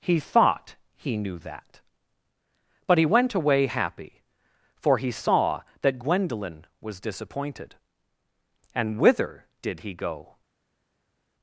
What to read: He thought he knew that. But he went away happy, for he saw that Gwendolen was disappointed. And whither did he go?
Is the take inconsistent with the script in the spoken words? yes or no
no